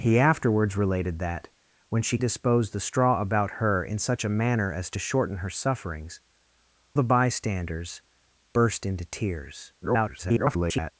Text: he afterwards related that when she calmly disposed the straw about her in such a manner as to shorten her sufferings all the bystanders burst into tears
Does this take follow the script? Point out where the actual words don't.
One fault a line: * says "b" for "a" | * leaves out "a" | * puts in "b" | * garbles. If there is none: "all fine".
* leaves out "calmly"
* leaves out "all"
* garbles